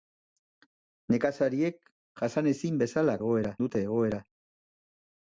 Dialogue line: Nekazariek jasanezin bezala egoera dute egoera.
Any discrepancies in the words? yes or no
no